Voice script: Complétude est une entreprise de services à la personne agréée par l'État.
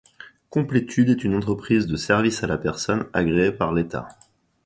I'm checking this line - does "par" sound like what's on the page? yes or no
yes